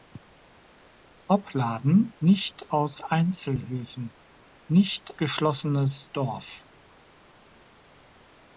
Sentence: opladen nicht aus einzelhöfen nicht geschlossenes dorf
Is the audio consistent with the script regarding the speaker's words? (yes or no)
yes